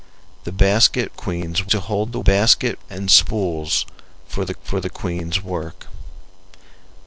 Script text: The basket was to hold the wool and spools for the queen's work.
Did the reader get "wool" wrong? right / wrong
wrong